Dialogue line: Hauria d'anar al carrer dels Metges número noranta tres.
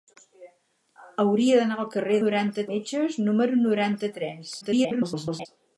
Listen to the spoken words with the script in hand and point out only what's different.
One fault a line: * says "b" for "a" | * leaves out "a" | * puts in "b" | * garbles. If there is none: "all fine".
* says "noranta" for "dels"
* garbles